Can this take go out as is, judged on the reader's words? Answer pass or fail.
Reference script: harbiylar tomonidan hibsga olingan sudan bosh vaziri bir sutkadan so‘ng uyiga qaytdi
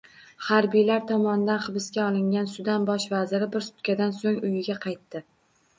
pass